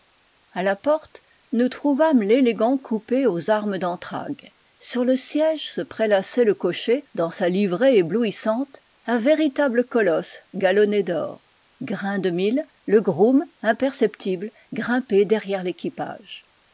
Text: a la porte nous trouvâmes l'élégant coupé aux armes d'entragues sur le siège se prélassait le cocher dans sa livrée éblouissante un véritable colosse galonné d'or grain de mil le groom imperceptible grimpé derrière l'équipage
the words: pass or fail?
pass